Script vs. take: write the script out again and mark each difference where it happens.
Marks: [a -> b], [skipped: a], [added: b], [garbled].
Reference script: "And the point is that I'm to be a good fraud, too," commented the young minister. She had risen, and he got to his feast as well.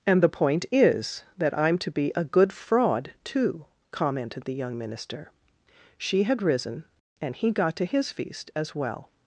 "And the point is that I'm to be a good fraud, too," commented the young minister. She had risen, and he got to his feast as well.